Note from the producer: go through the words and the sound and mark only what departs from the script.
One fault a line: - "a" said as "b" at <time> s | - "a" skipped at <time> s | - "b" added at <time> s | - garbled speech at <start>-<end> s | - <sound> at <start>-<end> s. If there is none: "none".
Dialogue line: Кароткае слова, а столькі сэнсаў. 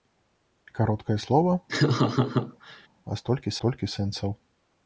- laugh at 1.7-2.9 s
- "столькі" added at 3.6 s